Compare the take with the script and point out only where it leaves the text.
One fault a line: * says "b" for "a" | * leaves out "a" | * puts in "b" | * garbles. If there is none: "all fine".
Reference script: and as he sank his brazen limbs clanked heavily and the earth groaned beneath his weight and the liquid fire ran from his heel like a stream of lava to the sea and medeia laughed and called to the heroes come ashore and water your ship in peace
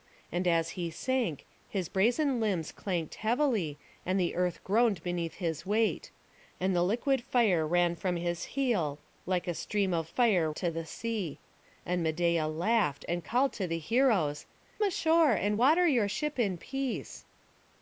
* says "fire" for "lava"
* leaves out "come"